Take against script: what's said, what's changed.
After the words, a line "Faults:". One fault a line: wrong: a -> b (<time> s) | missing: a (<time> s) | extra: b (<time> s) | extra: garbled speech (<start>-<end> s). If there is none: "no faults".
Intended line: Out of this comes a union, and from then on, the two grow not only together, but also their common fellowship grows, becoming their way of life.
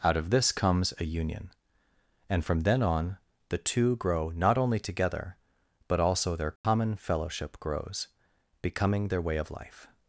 Out of this comes a union, and from then on, the two grow not only together, but also their common fellowship grows, becoming their way of life.
Faults:
no faults